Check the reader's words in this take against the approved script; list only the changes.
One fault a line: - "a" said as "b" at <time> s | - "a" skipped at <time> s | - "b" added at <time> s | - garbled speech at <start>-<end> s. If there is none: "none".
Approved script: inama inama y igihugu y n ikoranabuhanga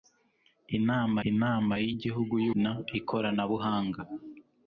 none